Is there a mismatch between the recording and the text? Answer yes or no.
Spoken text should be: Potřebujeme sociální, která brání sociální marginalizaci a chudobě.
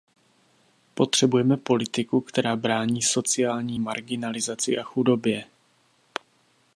yes